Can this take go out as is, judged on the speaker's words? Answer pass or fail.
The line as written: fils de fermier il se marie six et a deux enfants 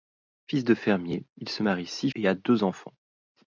pass